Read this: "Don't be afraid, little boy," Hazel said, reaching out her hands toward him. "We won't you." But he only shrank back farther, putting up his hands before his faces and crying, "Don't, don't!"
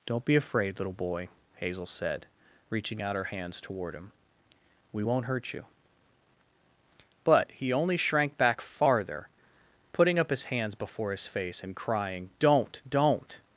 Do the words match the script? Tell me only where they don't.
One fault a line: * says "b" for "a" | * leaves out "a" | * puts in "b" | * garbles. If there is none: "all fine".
* puts in "hurt"
* says "face" for "faces"